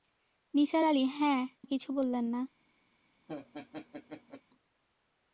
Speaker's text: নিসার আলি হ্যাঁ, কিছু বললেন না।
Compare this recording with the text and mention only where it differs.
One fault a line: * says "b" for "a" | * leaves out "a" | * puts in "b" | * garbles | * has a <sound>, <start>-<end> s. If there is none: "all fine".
* has a laugh, 3.3-4.4 s